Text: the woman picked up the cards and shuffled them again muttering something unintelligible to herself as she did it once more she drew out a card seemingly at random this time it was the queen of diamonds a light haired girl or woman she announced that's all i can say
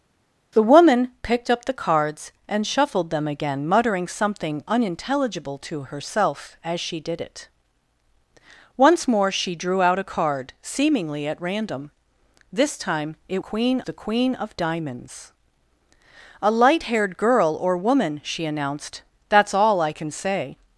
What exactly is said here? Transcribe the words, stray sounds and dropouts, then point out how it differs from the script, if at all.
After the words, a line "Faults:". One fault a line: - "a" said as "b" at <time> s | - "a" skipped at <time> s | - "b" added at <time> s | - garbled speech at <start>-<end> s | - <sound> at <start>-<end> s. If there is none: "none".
the woman picked up the cards and shuffled them again muttering something unintelligible to herself as she did it once more she drew out a card seemingly at random this time it queen the queen of diamonds a light haired girl or woman she announced that's all i can say
Faults:
- "was" said as "queen" at 13.4 s